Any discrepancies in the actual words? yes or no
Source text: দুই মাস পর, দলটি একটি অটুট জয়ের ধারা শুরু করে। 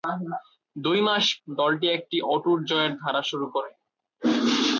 yes